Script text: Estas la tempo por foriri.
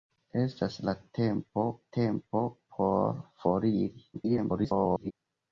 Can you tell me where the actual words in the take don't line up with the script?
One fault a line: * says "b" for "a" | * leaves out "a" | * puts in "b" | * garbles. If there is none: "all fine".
* puts in "tempo"
* garbles